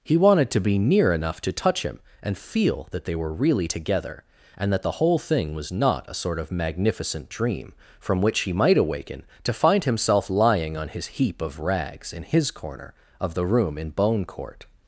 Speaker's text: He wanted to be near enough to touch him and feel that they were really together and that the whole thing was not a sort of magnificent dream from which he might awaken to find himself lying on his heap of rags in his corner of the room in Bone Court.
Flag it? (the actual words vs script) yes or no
no